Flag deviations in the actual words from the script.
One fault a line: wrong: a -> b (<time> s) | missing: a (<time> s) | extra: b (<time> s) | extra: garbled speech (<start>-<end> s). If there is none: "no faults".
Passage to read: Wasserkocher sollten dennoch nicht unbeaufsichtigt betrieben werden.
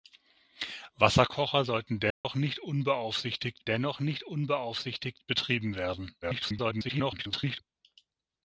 extra: dennoch nicht unbeaufsichtigt (3.6 s)
extra: garbled speech (6.2-7.6 s)